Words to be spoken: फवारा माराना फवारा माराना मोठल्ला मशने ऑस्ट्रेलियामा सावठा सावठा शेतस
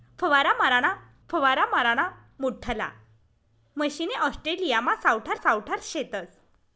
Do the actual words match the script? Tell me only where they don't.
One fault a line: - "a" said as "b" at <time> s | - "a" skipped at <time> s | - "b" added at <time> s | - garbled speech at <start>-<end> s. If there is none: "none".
none